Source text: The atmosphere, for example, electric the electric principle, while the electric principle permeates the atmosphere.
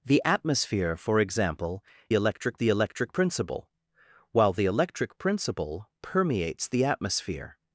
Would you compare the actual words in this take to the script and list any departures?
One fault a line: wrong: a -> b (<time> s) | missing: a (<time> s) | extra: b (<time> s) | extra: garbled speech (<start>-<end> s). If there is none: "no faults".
no faults